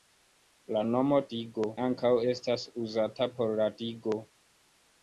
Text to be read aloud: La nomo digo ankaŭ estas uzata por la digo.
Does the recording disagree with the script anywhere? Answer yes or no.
no